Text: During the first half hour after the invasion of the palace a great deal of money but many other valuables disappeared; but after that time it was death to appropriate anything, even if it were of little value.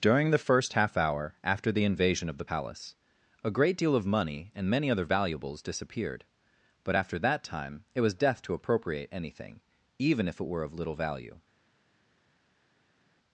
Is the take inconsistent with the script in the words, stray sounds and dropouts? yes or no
yes